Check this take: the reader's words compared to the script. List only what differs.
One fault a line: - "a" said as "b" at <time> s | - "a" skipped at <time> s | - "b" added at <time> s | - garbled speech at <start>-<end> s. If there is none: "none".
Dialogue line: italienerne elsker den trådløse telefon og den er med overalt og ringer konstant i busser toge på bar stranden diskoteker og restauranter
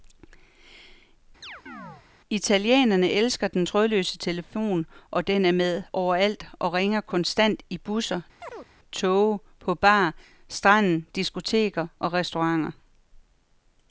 none